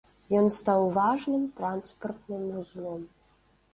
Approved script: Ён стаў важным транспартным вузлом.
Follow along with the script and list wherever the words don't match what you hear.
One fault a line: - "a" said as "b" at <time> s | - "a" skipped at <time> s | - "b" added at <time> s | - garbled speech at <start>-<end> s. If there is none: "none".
none